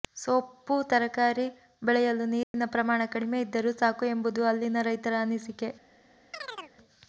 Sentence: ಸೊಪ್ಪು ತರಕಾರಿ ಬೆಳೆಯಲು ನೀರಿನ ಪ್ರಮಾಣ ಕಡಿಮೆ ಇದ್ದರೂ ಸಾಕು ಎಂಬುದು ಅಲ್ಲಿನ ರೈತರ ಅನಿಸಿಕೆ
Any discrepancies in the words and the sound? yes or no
yes